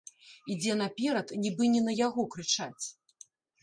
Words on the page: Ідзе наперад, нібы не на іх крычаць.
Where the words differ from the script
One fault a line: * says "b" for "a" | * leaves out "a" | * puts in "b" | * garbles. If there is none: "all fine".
* says "яго" for "іх"